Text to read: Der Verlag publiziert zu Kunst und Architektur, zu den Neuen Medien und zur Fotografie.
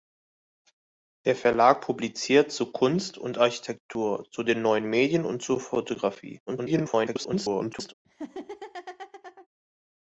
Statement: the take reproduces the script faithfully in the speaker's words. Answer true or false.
false